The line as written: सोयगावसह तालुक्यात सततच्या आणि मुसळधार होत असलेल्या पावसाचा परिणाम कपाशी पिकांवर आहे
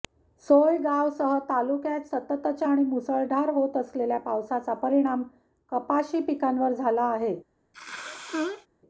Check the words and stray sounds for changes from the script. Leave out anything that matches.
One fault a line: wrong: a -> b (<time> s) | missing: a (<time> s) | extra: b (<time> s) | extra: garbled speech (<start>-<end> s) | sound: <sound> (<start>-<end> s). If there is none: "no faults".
extra: झाला (6.7 s)
sound: sneeze (7.7-8.7 s)